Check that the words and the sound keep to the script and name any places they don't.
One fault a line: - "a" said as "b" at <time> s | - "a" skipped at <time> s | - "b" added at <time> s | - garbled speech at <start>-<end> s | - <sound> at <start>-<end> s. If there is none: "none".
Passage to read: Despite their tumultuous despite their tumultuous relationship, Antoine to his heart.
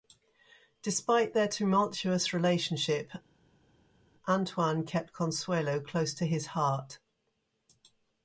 - "despite their tumultuous relationship Antoine" said as "relationship Antoine kept Consuelo close" at 2.3 s